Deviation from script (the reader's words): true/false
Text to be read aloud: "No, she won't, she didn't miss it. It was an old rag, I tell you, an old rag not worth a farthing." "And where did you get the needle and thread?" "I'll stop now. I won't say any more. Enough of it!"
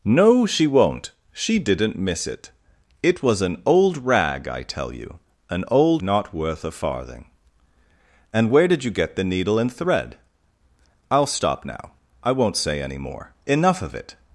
true